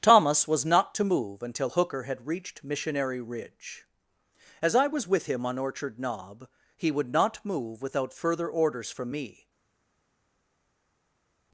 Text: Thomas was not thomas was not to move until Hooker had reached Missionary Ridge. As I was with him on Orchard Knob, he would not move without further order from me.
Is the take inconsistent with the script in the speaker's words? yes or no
yes